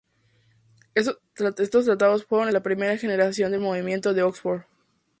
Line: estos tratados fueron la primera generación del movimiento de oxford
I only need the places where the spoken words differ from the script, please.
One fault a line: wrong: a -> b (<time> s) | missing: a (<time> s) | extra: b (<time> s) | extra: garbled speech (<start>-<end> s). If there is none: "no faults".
no faults